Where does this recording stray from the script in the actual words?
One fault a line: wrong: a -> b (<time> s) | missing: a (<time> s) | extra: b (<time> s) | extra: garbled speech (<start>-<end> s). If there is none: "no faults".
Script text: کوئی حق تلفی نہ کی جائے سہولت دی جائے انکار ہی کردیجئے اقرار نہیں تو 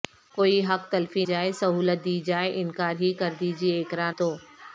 missing: نہ کی (1.2 s)
missing: نہیں (4.1 s)